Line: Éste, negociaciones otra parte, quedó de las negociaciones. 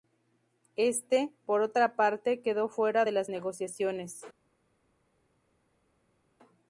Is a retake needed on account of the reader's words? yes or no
yes